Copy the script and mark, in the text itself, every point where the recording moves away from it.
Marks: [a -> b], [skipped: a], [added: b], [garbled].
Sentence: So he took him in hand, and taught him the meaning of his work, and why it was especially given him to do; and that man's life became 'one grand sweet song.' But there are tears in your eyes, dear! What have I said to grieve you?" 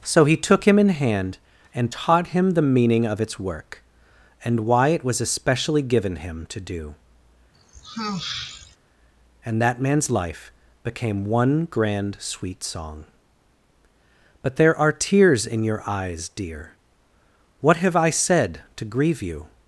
So he took him in hand, and taught him the meaning of [his -> its] work, and why it was especially given him to do; and that man's life became 'one grand sweet song.' But there are tears in your eyes, dear! What have I said to grieve you?"